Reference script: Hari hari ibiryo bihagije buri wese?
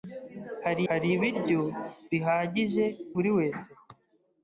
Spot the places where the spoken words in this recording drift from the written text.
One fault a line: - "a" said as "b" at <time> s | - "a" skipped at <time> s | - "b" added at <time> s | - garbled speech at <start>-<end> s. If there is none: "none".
none